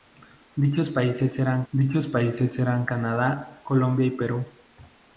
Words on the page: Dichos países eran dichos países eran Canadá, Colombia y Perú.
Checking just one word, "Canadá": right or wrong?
right